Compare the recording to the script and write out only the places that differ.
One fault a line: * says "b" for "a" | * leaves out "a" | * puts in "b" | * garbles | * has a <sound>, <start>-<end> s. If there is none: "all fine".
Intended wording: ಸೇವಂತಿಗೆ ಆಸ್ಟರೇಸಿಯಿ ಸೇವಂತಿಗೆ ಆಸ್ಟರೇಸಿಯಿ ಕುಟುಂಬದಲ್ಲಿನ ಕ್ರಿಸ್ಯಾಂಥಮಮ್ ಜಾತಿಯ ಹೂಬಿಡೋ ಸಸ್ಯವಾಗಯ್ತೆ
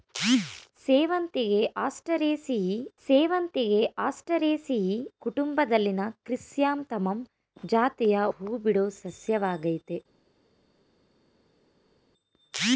all fine